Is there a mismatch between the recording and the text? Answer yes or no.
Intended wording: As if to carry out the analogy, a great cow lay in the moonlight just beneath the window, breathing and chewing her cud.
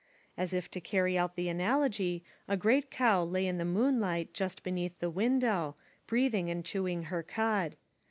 no